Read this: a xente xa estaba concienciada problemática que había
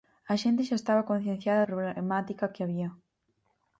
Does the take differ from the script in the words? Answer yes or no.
no